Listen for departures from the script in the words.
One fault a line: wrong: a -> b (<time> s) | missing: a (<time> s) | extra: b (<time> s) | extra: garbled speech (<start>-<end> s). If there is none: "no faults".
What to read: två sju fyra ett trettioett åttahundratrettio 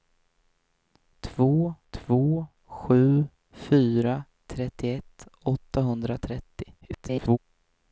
extra: två (1.9 s)
missing: ett (4.2 s)
extra: garbled speech (6.8-7.4 s)